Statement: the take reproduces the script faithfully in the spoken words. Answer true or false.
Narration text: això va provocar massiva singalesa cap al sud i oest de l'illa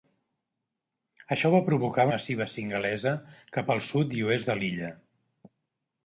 true